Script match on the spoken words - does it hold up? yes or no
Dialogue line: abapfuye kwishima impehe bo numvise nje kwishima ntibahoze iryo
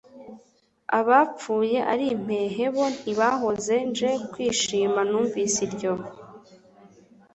no